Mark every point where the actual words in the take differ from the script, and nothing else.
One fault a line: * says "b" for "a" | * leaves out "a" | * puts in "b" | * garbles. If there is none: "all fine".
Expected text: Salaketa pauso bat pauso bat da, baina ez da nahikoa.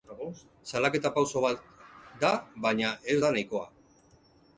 * leaves out "pauso bat"